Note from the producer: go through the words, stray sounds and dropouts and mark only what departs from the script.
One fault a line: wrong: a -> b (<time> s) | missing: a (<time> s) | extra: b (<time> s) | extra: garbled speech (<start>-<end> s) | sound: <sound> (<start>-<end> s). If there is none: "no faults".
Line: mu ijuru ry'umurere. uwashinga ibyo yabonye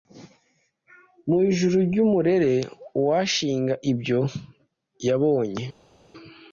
no faults